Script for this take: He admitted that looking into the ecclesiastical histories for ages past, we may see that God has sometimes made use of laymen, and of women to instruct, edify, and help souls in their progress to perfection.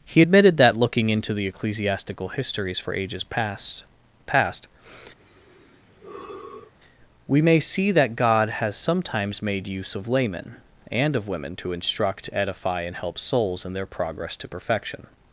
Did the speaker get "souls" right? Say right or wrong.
right